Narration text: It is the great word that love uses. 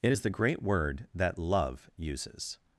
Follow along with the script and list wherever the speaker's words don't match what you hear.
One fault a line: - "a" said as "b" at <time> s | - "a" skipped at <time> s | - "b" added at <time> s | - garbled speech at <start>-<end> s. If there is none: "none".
none